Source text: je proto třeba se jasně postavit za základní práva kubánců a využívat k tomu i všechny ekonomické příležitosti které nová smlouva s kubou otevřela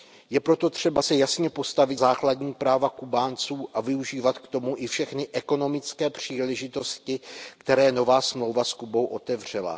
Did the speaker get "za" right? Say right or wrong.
wrong